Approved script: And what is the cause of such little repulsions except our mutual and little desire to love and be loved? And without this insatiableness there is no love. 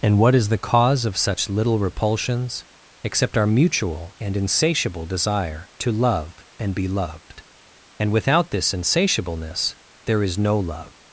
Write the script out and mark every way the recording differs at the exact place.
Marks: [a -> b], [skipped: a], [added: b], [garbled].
And what is the cause of such little repulsions except our mutual and [little -> insatiable] desire to love and be loved? And without this insatiableness there is no love.